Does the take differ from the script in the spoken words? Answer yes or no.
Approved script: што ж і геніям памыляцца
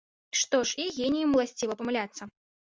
yes